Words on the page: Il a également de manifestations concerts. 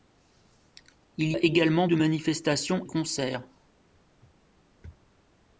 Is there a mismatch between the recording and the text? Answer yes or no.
no